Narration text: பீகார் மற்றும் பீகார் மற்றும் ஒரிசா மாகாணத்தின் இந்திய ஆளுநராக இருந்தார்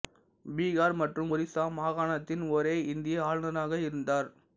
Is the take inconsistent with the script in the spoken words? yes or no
yes